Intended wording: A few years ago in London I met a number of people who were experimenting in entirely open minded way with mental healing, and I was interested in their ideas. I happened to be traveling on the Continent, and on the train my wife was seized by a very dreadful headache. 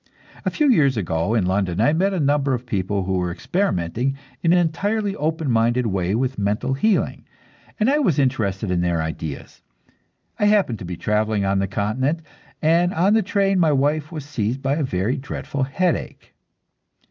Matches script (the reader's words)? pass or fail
pass